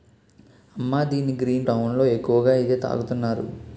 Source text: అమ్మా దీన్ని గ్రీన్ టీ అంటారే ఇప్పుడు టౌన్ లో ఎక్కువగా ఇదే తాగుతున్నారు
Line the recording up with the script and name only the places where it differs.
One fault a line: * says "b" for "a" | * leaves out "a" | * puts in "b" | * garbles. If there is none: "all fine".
* leaves out "టీ అంటారే ఇప్పుడు"